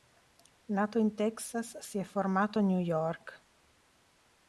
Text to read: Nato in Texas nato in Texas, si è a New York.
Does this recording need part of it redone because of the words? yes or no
yes